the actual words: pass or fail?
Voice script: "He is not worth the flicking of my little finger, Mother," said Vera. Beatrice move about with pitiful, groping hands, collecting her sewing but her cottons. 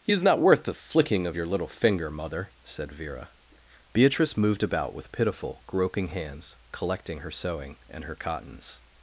fail